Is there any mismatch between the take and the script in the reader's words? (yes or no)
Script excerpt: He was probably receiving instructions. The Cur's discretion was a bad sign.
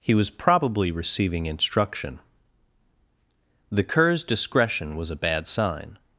yes